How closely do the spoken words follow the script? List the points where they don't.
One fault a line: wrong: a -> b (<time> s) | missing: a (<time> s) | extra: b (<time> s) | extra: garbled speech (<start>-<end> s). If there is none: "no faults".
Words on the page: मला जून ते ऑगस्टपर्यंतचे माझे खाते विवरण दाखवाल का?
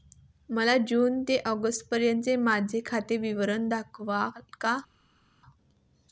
no faults